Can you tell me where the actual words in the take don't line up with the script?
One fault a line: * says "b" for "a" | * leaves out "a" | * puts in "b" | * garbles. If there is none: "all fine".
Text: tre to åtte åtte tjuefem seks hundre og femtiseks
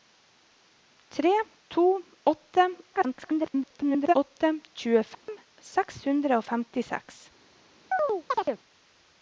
* garbles